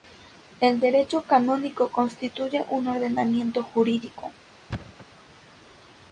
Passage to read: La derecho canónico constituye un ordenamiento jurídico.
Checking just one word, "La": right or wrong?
wrong